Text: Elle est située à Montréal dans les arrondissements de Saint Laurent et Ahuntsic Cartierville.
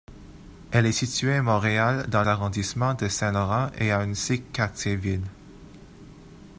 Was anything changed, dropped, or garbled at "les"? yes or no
yes